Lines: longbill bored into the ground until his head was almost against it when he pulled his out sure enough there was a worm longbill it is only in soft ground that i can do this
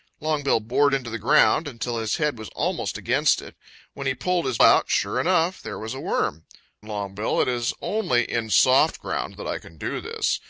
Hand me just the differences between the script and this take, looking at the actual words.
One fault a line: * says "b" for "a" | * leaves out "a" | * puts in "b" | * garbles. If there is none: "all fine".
all fine